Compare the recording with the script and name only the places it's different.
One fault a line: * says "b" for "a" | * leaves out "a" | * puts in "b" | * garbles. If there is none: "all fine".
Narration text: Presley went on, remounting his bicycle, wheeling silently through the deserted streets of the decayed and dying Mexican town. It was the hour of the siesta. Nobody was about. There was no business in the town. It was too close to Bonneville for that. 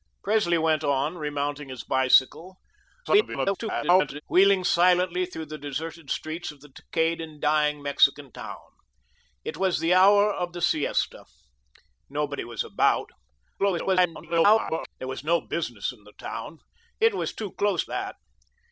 * garbles
* garbles
* leaves out "to Bonneville for"